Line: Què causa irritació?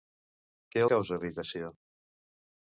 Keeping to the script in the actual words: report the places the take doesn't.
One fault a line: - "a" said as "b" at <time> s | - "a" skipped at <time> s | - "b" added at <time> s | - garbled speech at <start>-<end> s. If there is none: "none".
none